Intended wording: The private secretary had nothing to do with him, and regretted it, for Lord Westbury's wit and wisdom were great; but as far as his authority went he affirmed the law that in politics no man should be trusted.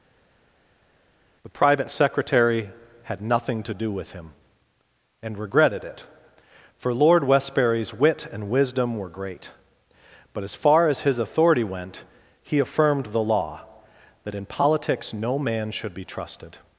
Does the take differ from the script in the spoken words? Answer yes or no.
no